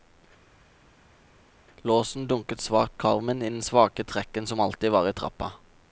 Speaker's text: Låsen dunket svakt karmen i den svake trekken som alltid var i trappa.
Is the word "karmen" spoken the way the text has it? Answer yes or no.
yes